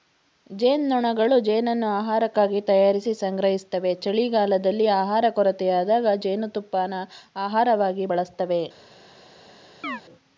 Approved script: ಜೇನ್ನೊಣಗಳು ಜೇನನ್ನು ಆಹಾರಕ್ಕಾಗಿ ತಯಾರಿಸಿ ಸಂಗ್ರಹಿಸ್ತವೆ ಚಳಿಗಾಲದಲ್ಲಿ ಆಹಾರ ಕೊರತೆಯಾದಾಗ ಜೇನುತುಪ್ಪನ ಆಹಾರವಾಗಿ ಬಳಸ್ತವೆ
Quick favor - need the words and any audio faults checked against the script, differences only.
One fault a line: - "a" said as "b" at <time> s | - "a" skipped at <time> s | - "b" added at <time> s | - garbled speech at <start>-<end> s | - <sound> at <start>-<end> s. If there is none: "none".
- chirp at 9.8-10.0 s